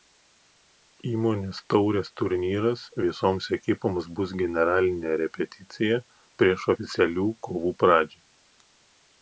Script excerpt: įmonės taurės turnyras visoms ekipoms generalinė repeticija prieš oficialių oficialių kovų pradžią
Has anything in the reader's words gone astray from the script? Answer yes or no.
yes